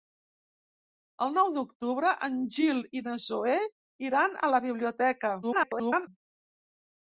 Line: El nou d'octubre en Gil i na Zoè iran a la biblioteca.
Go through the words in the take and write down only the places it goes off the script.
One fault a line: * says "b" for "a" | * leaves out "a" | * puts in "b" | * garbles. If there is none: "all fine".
* garbles